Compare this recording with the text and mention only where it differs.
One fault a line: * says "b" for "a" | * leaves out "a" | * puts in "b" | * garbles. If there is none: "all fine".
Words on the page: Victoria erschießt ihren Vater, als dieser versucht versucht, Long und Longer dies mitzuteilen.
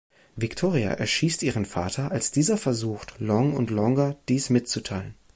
* leaves out "versucht"